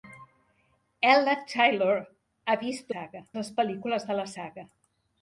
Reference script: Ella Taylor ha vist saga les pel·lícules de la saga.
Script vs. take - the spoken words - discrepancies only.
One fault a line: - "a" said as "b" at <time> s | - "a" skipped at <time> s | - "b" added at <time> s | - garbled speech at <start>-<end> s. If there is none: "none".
none